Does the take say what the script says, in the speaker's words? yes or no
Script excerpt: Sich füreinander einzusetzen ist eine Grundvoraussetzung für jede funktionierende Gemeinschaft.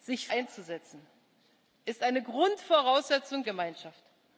no